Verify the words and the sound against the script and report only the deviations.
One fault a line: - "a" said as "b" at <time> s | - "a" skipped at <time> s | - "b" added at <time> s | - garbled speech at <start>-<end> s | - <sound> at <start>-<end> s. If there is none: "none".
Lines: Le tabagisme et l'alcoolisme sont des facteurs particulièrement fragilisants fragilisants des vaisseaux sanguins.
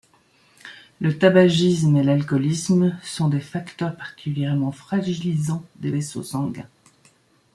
- "fragilisants" skipped at 5.6 s